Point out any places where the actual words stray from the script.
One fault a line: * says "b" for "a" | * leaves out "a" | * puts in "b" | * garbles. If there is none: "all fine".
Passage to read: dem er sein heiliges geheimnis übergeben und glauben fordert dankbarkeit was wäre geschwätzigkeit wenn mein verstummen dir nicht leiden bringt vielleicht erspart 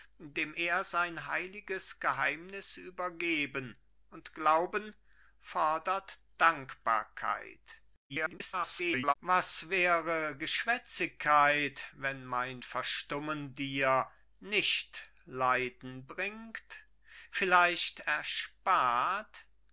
* garbles